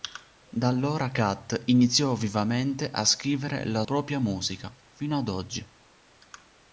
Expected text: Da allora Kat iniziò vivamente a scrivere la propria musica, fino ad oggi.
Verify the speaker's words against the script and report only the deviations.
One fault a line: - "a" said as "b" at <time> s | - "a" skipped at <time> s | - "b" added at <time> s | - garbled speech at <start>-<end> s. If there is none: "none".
none